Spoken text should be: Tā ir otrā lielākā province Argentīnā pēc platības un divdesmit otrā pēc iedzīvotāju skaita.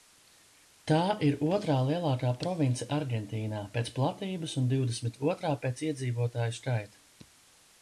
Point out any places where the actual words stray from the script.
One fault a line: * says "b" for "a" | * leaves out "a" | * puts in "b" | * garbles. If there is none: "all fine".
all fine